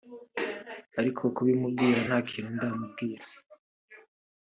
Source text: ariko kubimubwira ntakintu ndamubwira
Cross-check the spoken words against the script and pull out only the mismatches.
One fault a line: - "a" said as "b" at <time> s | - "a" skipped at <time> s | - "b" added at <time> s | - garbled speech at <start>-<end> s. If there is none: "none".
none